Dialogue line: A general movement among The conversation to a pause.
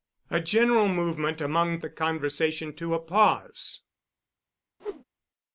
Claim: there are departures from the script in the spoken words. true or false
false